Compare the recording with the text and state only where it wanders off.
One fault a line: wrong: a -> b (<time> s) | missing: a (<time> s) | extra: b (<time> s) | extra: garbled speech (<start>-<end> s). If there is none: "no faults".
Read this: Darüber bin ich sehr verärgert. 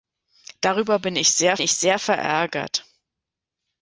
extra: ich sehr (1.6 s)